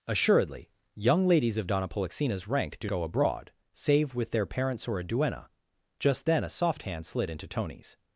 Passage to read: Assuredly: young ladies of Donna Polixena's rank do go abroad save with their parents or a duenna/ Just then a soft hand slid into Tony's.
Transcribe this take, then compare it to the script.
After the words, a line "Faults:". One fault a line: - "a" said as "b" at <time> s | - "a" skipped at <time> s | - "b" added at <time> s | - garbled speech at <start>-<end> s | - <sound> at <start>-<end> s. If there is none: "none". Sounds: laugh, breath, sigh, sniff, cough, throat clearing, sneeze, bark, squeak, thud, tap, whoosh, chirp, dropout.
Assuredly: young ladies of Donna Polixena's rank do go abroad save with their parents or a duenna/ Just then a soft hand slid into Tony's.
Faults:
none